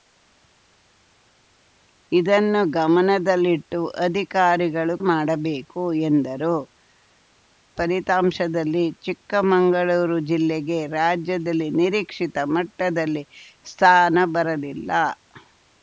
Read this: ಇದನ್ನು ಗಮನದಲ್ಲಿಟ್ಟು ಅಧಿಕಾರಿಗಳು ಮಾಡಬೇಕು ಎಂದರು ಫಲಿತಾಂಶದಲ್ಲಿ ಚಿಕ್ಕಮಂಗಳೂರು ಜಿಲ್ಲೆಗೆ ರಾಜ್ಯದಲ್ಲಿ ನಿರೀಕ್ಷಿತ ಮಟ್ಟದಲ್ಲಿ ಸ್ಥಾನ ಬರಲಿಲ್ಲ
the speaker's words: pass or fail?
pass